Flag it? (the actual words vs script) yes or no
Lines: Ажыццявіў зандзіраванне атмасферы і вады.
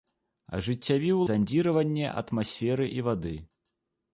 no